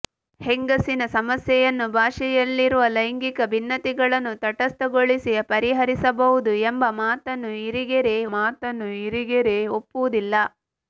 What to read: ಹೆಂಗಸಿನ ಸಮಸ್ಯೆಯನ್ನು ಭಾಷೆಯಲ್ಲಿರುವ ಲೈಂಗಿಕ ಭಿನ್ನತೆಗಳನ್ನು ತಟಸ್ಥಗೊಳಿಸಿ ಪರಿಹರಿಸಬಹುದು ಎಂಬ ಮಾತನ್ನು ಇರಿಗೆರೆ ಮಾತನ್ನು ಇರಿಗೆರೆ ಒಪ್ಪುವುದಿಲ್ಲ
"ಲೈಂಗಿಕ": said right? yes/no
yes